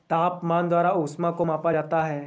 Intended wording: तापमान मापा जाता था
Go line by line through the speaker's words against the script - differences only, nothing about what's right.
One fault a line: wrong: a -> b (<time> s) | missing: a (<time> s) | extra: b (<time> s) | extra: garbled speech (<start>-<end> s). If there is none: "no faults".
extra: द्वारा ऊष्मा को (0.7 s)
wrong: था -> है (2.0 s)